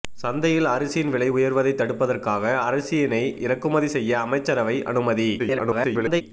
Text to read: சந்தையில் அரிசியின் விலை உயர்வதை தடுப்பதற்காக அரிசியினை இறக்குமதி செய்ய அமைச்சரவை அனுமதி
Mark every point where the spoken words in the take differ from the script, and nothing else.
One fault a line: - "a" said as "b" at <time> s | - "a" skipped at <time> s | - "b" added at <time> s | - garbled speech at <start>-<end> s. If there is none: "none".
- garbled speech at 5.4-6.2 s